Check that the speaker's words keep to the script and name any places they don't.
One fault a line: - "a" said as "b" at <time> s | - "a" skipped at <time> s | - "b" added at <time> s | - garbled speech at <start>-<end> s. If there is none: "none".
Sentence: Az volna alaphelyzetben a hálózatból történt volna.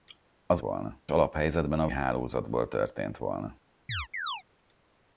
none